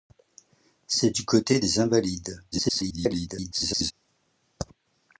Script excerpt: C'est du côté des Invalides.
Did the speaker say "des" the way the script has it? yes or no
yes